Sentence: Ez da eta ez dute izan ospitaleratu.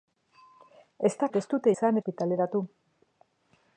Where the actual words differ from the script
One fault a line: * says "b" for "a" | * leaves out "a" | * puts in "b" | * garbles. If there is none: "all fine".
all fine